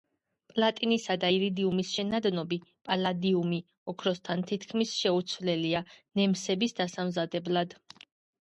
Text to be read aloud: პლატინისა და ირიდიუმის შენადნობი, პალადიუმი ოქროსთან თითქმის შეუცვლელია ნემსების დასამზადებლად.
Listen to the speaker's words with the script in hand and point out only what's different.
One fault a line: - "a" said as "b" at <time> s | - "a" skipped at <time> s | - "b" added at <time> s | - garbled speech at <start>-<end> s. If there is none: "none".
none